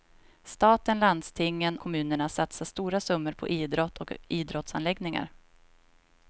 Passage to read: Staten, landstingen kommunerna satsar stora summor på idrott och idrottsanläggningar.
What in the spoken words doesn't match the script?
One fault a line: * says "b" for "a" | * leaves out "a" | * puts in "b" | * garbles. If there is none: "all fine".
all fine